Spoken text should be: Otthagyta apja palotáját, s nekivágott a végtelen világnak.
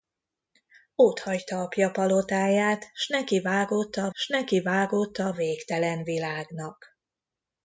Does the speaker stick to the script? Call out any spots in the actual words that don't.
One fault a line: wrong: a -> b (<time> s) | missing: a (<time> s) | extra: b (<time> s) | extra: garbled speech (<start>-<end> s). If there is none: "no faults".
extra: s nekivágott a (4.1 s)